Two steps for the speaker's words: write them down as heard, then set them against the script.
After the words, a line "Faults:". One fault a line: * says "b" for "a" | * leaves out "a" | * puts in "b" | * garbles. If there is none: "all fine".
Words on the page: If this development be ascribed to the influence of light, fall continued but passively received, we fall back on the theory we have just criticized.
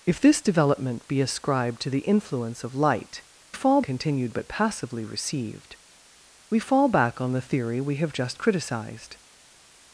If this development be ascribed to the influence of light, fall continued but passively received, we fall back on the theory we have just criticized.
Faults:
all fine